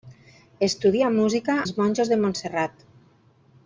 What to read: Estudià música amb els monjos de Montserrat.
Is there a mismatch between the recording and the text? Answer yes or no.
yes